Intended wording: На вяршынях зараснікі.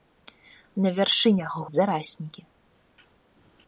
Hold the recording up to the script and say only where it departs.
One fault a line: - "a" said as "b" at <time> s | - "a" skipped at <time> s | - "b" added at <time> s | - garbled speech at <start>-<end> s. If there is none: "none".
none